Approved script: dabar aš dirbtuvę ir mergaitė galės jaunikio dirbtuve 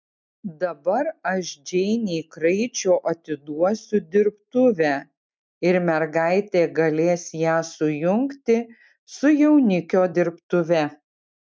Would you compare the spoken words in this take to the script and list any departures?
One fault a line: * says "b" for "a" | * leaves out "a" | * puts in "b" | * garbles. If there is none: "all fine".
* puts in "džeinei kraičio atiduosiu"
* puts in "ją sujungti su"